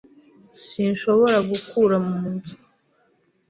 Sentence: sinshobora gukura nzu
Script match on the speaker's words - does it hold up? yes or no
no